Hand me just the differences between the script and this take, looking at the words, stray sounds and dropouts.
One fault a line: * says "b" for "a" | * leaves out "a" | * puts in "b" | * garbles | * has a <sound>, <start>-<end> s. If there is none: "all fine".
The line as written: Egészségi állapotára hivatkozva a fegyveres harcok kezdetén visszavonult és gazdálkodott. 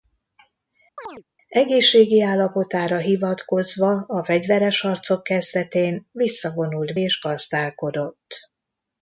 * has a chirp, 1.0-1.2 s